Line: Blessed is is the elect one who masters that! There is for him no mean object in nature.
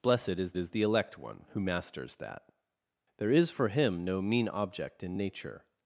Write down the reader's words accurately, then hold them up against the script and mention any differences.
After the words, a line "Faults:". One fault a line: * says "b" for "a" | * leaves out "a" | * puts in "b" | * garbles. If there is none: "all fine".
Blessed is is the elect one who masters that! There is for him no mean object in nature.
Faults:
all fine